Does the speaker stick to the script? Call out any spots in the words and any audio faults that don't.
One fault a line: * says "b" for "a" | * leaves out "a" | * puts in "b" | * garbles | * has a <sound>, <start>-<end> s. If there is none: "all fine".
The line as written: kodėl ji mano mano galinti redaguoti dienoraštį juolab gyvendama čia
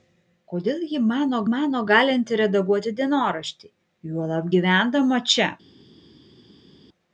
all fine